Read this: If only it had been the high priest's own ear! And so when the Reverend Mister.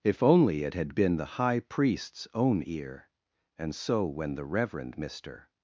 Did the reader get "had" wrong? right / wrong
right